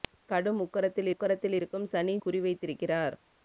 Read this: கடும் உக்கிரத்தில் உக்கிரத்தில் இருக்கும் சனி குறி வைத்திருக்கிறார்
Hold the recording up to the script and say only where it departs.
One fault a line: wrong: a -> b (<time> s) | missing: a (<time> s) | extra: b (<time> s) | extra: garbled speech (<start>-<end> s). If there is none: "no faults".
no faults